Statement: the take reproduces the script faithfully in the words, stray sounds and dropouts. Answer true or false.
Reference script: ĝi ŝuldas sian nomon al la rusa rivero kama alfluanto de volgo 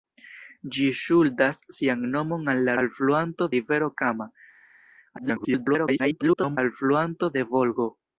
false